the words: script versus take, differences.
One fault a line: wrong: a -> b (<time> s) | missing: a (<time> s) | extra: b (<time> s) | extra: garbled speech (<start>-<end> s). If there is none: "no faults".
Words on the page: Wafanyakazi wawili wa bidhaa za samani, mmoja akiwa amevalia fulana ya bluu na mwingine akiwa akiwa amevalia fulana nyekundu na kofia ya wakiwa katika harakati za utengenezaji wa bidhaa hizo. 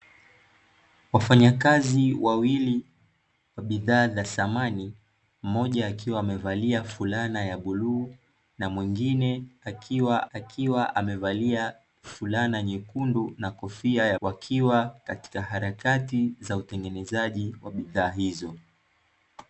no faults